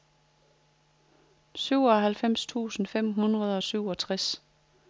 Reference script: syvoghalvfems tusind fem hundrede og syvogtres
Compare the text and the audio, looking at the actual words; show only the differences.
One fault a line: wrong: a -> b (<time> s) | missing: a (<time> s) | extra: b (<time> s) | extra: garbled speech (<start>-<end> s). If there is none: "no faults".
no faults